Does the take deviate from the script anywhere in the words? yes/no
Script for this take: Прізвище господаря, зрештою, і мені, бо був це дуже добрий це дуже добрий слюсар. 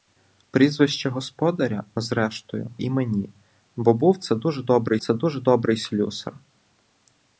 no